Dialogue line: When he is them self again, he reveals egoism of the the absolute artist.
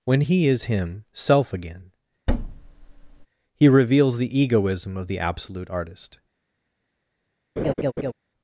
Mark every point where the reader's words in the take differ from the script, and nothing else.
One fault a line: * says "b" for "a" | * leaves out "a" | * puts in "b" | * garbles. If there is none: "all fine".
* says "him" for "them"
* puts in "the"
* leaves out "the"